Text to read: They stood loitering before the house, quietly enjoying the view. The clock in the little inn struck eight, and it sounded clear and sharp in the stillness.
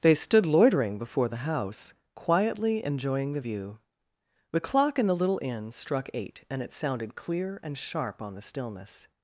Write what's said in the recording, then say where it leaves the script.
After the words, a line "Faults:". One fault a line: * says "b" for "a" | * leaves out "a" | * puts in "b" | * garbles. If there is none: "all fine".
They stood loitering before the house, quietly enjoying the view. The clock in the little inn struck eight, and it sounded clear and sharp on the stillness.
Faults:
* says "on" for "in"